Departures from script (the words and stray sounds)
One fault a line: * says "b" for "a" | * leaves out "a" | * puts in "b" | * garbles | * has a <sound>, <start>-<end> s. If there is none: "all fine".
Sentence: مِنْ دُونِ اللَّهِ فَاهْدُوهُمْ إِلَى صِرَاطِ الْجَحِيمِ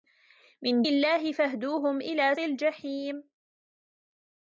* leaves out "دُونِ"
* leaves out "صِرَاطِ"